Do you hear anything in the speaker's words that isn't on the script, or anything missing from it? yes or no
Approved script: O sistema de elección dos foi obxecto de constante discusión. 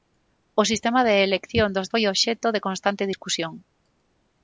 no